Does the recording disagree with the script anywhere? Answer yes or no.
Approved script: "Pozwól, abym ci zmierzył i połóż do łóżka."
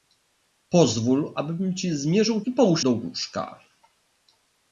no